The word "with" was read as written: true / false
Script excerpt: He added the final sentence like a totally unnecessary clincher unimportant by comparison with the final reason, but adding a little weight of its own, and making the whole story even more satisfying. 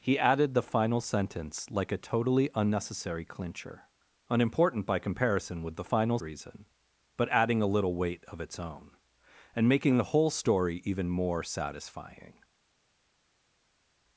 true